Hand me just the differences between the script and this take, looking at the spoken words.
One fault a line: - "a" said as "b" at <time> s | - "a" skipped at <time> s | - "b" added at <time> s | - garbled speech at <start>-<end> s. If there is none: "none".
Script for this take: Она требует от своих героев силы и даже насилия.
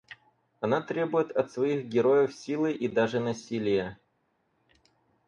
none